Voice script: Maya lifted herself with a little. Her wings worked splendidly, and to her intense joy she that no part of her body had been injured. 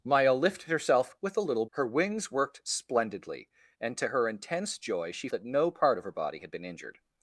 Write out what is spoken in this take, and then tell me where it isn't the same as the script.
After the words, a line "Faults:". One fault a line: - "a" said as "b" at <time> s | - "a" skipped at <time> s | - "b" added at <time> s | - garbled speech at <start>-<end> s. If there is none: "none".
Maya lifted herself with a little. Her wings worked splendidly, and to her intense joy she that no part of her body had been injured.
Faults:
none